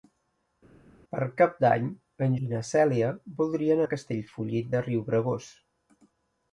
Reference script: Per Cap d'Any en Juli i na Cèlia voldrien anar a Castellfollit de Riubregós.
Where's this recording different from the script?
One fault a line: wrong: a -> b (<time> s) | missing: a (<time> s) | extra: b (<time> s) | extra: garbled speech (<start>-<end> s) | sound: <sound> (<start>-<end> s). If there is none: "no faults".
missing: Juli (2.3 s)
missing: anar (3.8 s)